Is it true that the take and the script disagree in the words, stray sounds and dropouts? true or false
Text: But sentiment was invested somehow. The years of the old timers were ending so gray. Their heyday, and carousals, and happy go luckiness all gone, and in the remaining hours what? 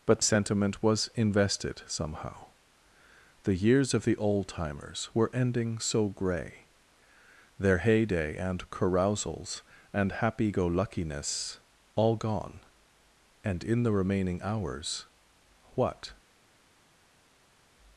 false